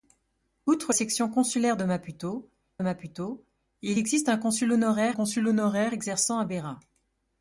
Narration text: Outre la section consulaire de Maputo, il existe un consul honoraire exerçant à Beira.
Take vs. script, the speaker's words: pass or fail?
fail